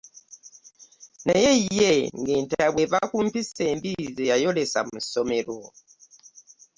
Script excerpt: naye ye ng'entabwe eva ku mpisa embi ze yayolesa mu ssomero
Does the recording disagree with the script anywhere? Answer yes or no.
no